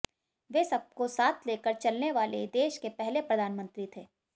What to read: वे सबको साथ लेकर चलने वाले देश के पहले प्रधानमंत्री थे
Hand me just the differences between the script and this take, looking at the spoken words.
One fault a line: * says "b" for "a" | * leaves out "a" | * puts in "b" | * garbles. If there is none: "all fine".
all fine